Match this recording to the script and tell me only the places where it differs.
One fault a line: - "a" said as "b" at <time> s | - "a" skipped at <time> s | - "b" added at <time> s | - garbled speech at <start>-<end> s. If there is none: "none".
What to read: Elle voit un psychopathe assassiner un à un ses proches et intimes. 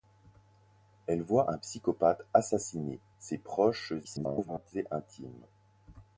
- "un à un" skipped at 3.0 s
- garbled speech at 4.0-4.7 s